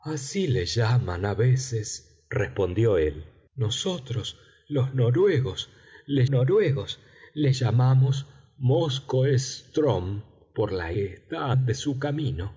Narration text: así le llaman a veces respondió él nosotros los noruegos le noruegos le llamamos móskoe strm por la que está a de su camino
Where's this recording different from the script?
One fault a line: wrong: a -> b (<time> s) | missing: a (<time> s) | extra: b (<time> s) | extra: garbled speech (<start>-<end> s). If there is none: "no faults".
no faults